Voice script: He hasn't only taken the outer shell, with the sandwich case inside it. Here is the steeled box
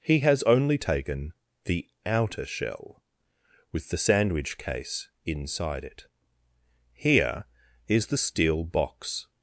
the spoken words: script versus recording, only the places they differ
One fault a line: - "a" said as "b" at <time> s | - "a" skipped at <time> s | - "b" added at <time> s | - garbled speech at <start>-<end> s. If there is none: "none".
- "hasn't" said as "has" at 0.2 s
- "steeled" said as "steel" at 8.1 s